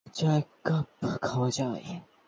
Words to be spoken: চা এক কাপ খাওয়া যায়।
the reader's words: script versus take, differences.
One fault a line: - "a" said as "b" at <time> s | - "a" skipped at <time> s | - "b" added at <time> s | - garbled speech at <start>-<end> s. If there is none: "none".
none